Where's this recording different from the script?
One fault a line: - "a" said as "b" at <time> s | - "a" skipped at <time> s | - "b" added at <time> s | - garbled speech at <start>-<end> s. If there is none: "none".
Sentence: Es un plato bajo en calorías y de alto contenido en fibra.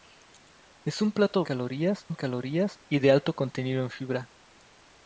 - "bajo" said as "calorías" at 1.4 s